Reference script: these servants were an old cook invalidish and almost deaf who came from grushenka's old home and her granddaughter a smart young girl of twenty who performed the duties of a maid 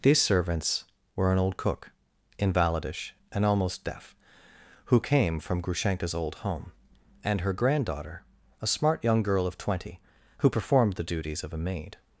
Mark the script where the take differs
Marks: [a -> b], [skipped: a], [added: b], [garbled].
these servants were an old cook invalidish and almost deaf who came from grushenka's old home and her granddaughter a smart young girl of twenty who performed the duties of a maid